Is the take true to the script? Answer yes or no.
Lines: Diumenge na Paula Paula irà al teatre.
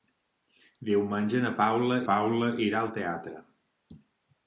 yes